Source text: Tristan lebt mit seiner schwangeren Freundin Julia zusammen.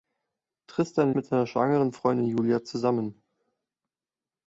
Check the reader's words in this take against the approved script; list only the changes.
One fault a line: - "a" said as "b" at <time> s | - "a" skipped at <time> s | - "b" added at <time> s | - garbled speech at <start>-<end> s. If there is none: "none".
- "lebt" skipped at 1.1 s